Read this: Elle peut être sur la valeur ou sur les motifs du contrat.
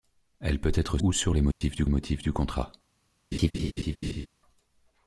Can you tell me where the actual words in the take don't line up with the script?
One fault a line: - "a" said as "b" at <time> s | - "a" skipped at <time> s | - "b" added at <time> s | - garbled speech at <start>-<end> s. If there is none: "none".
- "sur la valeur" skipped at 1.0 s
- "motifs du" added at 1.9 s